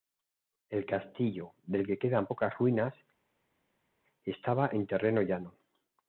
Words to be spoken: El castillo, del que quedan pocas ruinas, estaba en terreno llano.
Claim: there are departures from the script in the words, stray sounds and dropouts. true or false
false